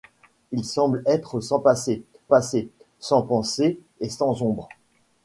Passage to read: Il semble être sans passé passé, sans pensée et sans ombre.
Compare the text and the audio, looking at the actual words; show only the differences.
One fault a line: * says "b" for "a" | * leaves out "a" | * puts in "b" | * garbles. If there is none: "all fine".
all fine